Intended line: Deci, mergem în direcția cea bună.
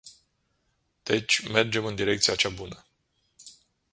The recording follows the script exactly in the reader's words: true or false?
true